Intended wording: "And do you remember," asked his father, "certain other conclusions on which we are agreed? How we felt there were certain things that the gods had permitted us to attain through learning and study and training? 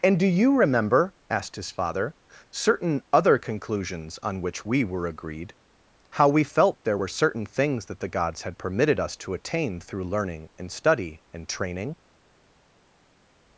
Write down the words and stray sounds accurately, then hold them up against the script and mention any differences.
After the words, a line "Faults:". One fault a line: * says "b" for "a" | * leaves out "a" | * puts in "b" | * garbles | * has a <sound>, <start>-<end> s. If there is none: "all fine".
"And do you remember," asked his father, "certain other conclusions on which we were agreed? How we felt there were certain things that the gods had permitted us to attain through learning and study and training?
Faults:
* says "were" for "are"